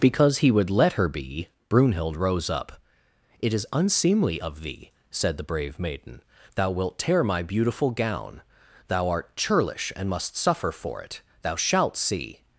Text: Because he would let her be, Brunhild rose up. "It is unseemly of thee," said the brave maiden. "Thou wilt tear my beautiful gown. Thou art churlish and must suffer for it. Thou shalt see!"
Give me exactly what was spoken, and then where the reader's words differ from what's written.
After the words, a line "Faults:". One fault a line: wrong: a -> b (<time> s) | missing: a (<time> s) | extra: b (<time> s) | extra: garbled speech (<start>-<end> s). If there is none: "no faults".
Because he would let her be, Brunhild rose up. "It is unseemly of thee," said the brave maiden. "Thou wilt tear my beautiful gown. Thou art churlish and must suffer for it. Thou shalt see!"
Faults:
no faults